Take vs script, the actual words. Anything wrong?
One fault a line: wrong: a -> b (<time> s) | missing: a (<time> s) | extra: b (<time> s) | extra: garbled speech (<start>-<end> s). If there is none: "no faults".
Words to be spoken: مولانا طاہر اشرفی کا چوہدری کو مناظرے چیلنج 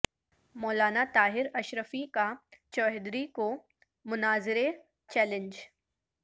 no faults